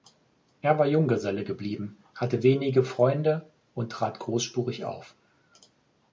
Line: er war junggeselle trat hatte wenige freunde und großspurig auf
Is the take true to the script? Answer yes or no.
no